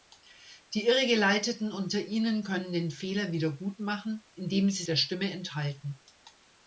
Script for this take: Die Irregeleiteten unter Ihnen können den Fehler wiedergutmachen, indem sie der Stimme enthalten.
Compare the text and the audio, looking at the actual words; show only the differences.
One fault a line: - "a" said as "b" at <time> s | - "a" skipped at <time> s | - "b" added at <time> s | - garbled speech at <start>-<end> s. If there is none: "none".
none